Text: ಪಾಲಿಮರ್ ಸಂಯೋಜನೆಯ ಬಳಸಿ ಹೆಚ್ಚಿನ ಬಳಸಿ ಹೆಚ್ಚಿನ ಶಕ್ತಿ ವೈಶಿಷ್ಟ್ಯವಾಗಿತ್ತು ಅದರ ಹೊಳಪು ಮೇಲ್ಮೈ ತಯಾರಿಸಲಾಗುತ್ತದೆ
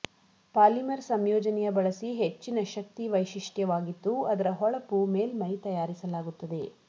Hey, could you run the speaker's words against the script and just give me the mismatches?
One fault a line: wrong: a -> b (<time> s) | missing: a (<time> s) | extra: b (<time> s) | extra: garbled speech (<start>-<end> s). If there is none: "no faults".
missing: ಬಳಸಿ ಹೆಚ್ಚಿನ (2.6 s)